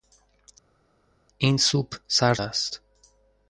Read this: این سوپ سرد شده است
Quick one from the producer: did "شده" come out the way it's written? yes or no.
no